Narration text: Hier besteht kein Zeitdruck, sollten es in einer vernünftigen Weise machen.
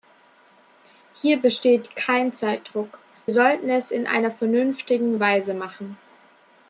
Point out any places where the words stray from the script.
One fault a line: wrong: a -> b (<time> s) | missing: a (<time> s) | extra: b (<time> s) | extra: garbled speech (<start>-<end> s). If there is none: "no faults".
no faults